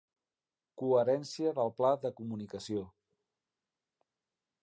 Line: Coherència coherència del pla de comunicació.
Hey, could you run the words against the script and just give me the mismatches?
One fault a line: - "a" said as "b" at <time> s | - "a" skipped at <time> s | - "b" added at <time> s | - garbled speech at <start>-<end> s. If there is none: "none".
- "coherència" skipped at 1.5 s